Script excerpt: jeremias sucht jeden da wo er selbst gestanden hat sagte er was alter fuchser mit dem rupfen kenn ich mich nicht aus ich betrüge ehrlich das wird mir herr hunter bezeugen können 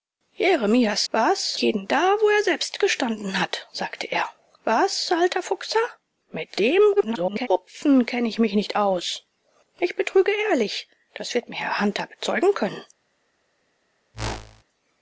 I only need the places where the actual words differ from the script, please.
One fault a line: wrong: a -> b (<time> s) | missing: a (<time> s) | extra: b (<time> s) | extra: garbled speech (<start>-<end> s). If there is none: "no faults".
wrong: sucht -> was (1.1 s)
extra: garbled speech (7.0-7.5 s)